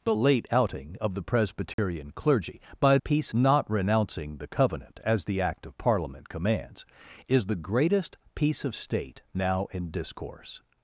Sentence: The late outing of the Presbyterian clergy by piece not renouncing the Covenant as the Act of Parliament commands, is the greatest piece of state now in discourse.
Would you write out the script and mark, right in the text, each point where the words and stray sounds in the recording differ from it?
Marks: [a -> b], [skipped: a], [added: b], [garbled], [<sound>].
The late outing of the Presbyterian [dropout] clergy by piece not renouncing the Covenant as the Act of Parliament commands, is the greatest piece of state now in discourse.